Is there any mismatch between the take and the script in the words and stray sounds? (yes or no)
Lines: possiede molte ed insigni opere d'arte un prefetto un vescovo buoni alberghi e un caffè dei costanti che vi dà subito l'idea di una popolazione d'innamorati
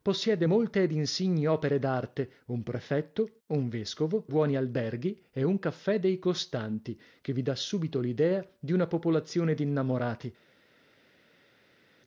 no